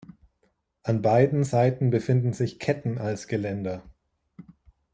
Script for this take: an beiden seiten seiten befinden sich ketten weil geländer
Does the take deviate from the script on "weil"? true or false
true